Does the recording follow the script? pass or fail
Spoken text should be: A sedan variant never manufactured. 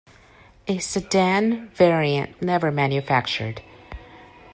pass